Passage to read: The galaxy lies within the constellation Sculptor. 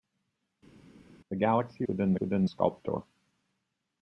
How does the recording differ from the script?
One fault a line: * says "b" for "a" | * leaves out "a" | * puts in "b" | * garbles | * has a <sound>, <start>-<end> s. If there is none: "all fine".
* leaves out "lies"
* says "within" for "constellation"